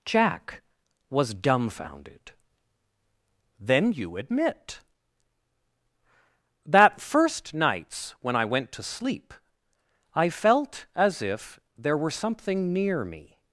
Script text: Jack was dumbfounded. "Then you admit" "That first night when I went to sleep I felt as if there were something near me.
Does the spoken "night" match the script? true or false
false